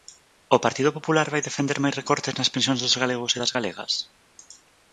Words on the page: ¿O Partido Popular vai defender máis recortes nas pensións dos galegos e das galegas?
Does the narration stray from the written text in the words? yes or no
no